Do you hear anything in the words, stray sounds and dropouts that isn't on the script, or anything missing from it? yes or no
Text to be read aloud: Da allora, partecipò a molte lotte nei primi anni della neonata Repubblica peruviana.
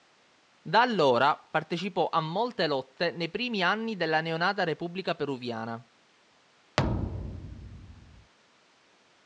yes